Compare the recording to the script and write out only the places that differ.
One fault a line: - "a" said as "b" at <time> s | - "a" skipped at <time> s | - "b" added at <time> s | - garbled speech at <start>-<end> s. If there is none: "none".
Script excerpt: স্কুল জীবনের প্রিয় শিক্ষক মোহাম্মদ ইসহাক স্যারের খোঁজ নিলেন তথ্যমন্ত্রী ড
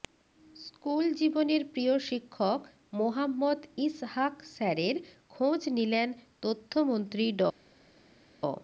none